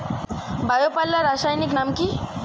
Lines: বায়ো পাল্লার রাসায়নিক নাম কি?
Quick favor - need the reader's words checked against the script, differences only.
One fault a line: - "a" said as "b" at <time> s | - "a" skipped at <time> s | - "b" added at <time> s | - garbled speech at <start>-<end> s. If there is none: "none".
none